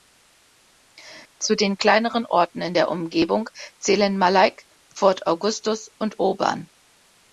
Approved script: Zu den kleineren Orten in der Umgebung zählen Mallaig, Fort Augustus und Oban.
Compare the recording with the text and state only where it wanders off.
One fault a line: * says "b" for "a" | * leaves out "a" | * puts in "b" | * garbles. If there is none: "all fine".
all fine